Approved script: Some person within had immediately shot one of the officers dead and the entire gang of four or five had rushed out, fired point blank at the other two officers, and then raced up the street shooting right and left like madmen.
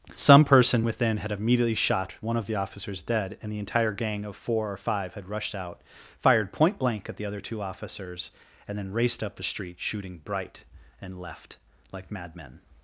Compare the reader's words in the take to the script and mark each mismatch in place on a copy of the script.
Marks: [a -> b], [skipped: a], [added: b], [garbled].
Some person within had immediately shot one of the officers dead and the entire gang of four or five had rushed out, fired point blank at the other two officers, and then raced up the street shooting [right -> bright] and left like madmen.